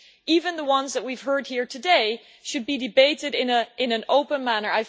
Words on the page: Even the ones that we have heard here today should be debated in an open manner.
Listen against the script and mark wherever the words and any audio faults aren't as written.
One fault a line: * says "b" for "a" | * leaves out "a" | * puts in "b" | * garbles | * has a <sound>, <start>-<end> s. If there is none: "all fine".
all fine